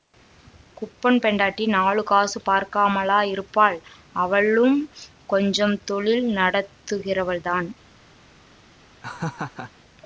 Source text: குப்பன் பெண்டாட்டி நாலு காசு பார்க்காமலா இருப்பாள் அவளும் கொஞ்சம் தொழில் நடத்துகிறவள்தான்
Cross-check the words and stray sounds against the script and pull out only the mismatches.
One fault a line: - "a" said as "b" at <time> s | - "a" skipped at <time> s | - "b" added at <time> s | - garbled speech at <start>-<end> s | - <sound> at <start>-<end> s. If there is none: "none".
- laugh at 9.0-9.7 s